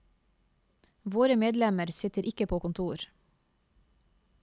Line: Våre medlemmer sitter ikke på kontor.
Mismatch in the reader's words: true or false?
false